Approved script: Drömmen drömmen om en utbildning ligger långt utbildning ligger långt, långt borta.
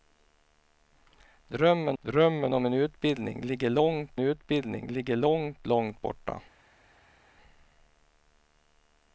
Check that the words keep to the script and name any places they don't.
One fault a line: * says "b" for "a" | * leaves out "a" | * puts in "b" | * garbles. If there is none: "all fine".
all fine